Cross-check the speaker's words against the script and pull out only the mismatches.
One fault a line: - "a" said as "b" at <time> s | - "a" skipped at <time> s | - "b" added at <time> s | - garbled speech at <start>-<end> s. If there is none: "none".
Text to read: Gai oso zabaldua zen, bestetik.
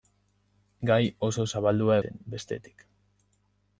none